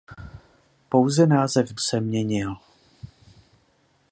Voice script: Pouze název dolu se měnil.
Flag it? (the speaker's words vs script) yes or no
yes